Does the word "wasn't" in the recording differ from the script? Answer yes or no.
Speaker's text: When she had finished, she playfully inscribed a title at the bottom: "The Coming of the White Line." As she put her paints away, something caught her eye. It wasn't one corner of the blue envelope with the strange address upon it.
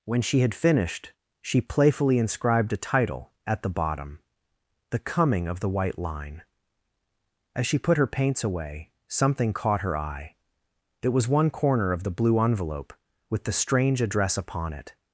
yes